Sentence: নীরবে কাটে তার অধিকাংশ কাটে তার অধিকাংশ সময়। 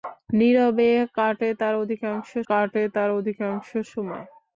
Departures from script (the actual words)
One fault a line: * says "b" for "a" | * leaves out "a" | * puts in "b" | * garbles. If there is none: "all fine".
all fine